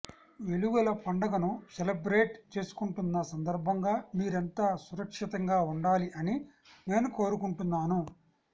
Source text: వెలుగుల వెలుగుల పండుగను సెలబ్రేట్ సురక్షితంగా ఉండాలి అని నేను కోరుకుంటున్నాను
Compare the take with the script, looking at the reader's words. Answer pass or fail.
fail